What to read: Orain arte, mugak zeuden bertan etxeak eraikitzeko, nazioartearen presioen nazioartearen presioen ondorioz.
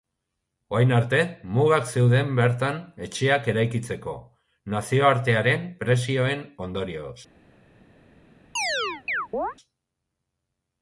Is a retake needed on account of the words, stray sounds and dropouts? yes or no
yes